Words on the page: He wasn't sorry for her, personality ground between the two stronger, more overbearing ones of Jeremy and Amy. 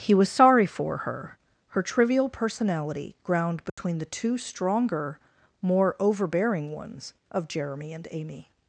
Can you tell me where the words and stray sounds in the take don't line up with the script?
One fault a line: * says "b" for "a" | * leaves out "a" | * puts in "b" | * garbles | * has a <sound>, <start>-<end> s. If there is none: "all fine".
* says "was" for "wasn't"
* puts in "her trivial"
* has a dropout, 3.7-3.8 s